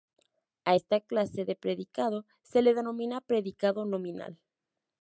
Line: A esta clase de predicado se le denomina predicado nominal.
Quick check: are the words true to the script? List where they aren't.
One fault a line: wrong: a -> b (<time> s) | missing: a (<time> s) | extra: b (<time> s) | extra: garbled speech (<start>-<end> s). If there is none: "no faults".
no faults